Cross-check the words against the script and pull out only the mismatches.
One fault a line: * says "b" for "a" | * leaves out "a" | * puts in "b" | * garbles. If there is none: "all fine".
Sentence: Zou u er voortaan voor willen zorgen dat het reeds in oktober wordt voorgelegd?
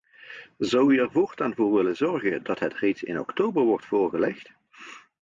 all fine